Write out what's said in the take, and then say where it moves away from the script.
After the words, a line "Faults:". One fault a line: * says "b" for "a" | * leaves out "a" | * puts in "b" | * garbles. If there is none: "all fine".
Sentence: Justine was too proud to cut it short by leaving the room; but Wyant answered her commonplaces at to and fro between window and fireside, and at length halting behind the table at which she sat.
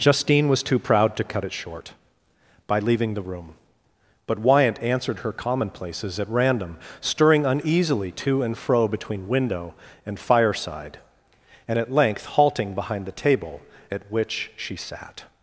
Justine was too proud to cut it short by leaving the room; but Wyant answered her commonplaces at random, stirring uneasily to and fro between window and fireside, and at length halting behind the table at which she sat.
Faults:
* puts in "random stirring uneasily"